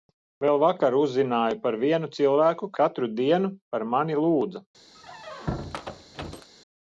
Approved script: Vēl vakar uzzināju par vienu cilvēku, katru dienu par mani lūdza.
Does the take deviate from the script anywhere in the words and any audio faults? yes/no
yes